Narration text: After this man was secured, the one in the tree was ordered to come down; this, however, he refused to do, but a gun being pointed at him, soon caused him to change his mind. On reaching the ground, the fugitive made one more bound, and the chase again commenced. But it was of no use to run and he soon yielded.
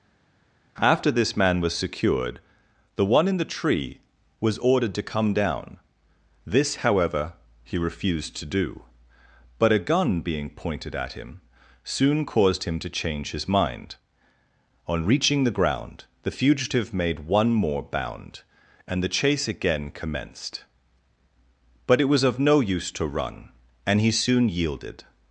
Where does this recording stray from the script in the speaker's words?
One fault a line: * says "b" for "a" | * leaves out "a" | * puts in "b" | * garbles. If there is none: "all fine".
all fine